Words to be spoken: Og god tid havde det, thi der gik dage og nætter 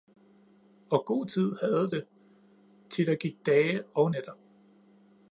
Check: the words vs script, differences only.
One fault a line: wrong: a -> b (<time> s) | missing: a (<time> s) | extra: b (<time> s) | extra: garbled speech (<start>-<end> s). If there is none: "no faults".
no faults